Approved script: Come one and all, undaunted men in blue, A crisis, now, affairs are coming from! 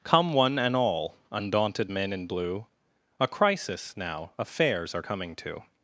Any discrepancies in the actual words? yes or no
yes